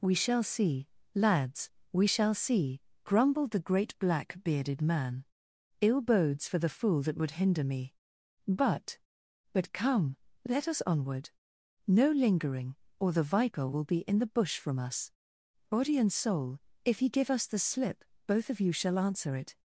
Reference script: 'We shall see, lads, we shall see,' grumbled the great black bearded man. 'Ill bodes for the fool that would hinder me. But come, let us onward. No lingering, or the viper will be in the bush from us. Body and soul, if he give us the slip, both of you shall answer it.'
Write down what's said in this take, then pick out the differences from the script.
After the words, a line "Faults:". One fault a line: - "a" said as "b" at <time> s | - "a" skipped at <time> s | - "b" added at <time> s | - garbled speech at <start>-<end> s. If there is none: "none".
'We shall see, lads, we shall see,' grumbled the great black bearded man. 'Ill bodes for the fool that would hinder me. But But come, let us onward. No lingering, or the viper will be in the bush from us. Body and soul, if he give us the slip, both of you shall answer it.'
Faults:
- "But" added at 9.5 s